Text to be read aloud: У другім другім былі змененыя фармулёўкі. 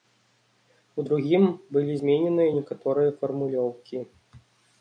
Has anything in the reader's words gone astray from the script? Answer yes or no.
yes